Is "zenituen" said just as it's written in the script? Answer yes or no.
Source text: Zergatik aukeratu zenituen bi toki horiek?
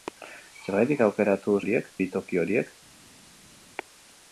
no